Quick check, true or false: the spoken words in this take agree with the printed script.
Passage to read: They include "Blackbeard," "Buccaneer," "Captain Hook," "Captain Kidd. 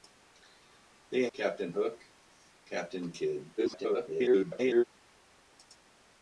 false